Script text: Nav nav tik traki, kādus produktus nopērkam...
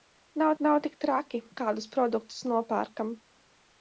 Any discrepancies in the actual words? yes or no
no